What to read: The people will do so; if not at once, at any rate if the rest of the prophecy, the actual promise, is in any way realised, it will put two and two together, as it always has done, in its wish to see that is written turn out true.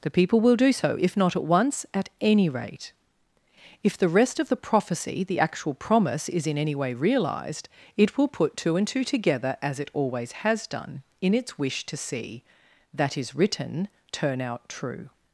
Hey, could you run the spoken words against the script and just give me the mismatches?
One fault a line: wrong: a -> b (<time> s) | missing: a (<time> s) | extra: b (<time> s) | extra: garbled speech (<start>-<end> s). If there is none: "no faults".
no faults